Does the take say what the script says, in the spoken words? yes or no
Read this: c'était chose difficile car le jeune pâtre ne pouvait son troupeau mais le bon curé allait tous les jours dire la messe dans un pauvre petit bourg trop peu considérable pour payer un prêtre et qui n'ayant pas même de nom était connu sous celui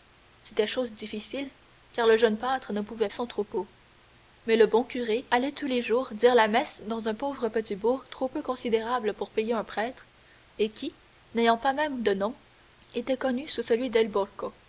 yes